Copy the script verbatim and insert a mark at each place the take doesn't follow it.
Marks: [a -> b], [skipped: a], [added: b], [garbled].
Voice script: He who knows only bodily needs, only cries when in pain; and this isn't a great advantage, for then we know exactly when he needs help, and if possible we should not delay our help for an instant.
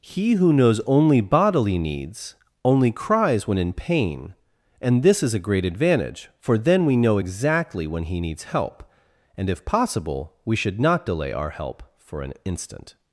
He who knows only bodily needs, only cries when in pain; and this [isn't -> is] a great advantage, for then we know exactly when he needs help, and if possible we should not delay our help for an instant.